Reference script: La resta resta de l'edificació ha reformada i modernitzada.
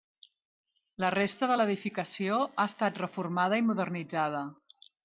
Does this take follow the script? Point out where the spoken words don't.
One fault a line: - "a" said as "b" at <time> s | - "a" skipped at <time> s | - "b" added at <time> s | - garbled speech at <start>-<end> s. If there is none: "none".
- "resta" skipped at 1.5 s
- "estat" added at 2.7 s